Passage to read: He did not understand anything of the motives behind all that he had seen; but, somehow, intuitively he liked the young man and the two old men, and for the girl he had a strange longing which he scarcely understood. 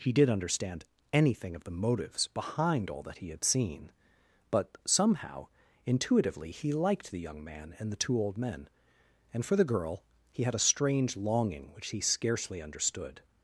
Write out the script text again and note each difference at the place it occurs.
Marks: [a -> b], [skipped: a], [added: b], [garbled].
He did [skipped: not] understand anything of the motives behind all that he had seen; but, somehow, intuitively he liked the young man and the two old men, and for the girl he had a strange longing which he scarcely understood.